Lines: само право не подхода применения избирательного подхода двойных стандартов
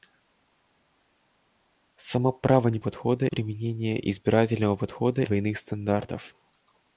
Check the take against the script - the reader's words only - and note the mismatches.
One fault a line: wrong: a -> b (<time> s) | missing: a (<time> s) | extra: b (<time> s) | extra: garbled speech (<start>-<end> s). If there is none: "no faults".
no faults